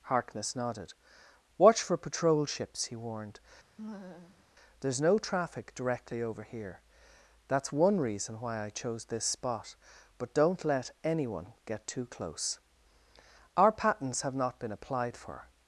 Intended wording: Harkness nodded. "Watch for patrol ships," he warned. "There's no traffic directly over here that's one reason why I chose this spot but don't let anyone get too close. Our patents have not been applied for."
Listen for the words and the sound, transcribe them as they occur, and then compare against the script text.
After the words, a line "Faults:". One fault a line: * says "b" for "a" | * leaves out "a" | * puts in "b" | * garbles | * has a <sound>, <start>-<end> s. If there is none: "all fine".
Harkness nodded. "Watch for patrol ships," he warned. "There's no traffic directly over here that's one reason why I chose this spot but don't let anyone get too close. Our patents have not been applied for."
Faults:
* has a laugh, 3.8-4.4 s